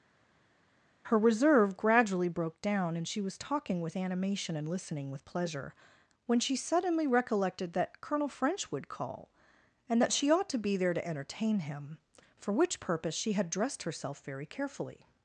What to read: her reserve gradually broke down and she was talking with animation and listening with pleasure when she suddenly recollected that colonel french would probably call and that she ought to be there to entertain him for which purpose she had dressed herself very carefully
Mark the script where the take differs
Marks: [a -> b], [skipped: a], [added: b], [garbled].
her reserve gradually broke down and she was talking with animation and listening with pleasure when she suddenly recollected that colonel french would [skipped: probably] call and that she ought to be there to entertain him for which purpose she had dressed herself very carefully